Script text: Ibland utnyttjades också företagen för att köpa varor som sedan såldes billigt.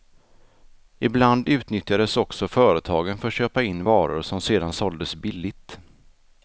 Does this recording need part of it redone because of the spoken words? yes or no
yes